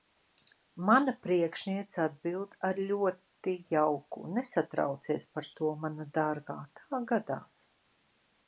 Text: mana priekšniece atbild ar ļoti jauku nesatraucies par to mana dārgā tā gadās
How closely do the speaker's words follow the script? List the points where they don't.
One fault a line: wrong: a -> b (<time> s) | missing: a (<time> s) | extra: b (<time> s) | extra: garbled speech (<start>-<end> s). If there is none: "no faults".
no faults